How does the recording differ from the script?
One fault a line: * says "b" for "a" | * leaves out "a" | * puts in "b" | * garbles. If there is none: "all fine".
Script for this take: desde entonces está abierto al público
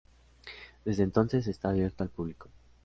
all fine